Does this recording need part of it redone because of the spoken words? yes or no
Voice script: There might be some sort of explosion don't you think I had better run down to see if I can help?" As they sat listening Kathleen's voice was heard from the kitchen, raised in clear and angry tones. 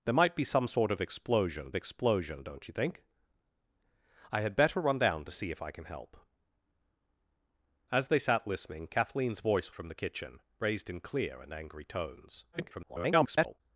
yes